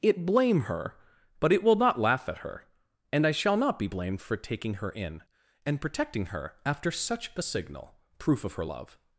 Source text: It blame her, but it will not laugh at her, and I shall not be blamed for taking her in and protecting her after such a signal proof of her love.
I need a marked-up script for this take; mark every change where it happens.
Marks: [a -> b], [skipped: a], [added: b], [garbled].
It blame her, but it will not laugh at her, and I shall not be blamed for taking her in and protecting her after such a signal proof of her love.